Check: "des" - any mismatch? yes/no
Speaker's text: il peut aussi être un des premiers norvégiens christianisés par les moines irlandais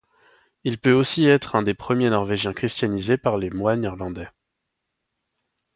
no